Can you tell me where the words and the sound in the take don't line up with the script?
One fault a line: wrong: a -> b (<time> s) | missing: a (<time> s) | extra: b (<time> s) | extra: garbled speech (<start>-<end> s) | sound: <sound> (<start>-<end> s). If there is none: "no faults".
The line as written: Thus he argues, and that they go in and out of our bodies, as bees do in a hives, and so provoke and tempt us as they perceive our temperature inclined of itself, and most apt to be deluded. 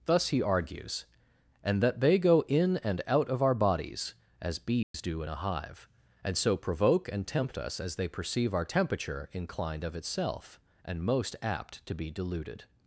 sound: dropout (4.8-4.9 s)
wrong: hives -> hive (5.4 s)